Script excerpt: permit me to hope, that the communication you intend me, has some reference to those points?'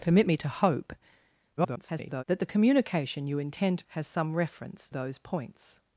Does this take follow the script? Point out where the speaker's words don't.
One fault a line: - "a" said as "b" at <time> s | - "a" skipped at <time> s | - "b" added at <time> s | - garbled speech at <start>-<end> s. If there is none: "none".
- garbled speech at 1.6-2.2 s
- "me" skipped at 3.8 s
- "to" skipped at 4.9 s